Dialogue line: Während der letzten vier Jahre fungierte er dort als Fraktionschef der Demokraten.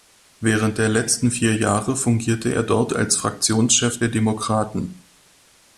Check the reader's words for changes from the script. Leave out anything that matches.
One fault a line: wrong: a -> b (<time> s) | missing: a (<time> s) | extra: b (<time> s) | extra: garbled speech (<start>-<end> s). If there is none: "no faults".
no faults